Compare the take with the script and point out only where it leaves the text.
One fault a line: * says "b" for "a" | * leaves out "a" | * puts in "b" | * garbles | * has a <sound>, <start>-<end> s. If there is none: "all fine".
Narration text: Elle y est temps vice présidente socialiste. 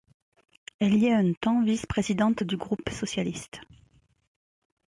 * puts in "un"
* puts in "du groupe"